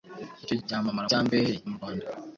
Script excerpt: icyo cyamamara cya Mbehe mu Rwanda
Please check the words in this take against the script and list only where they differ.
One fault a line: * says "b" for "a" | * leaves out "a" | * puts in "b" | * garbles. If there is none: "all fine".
all fine